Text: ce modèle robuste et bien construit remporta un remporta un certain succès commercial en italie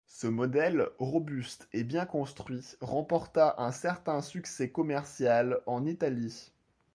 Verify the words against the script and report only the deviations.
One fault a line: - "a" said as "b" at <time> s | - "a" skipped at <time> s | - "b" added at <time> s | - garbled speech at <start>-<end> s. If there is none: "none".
- "remporta un" skipped at 3.7 s